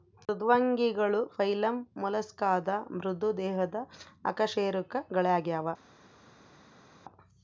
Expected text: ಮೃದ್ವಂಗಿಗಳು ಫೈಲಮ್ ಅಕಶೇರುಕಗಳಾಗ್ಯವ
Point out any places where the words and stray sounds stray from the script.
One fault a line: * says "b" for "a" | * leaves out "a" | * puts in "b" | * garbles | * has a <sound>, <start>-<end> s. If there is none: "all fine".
* puts in "ಮೊಲಸ್ಕಾದ ಮೃದು ದೇಹದ"